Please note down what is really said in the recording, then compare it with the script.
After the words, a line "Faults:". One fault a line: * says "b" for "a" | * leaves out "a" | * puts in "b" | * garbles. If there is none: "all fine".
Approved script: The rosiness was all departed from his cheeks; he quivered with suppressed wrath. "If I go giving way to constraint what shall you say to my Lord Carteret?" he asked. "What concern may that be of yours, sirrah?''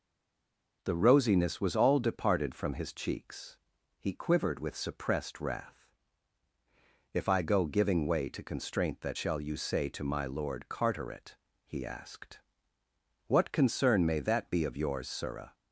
The rosiness was all departed from his cheeks; he quivered with suppressed wrath. "If I go giving way to constraint that shall you say to my Lord Carteret?" he asked. "What concern may that be of yours, sirrah?''
Faults:
* says "that" for "what"